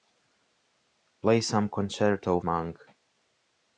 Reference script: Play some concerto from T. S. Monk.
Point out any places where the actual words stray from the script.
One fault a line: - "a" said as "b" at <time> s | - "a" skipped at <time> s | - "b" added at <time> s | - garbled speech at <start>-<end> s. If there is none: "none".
- "from T S" skipped at 2.4 s